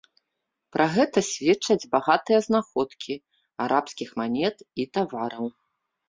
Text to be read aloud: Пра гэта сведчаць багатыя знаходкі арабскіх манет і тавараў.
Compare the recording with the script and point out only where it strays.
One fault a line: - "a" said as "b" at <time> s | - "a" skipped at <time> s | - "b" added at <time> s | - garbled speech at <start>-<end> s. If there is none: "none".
none